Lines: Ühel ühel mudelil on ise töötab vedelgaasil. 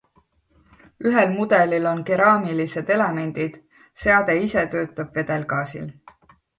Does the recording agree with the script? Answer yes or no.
no